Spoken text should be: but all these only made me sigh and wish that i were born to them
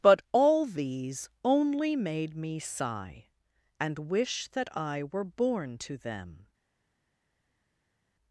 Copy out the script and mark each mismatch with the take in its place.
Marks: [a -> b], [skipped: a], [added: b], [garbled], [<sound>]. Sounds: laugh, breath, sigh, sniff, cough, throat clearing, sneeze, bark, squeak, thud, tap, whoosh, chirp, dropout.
but all these only made me sigh and wish that i were born to them